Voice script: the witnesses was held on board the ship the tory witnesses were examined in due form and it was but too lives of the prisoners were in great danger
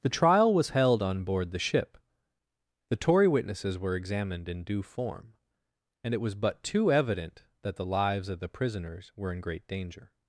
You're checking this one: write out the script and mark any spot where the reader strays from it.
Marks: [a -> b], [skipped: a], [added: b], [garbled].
the [witnesses -> trial] was held on board the ship the tory witnesses were examined in due form and it was but too [added: evident that the] lives of the prisoners were in great danger